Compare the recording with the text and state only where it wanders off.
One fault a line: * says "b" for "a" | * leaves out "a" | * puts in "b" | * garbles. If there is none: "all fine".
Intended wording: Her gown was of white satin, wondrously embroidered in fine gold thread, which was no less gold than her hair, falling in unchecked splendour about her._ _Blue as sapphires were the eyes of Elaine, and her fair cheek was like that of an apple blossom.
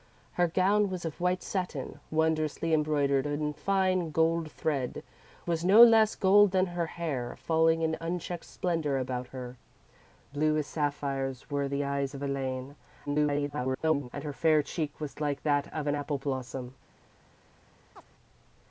* leaves out "which"
* garbles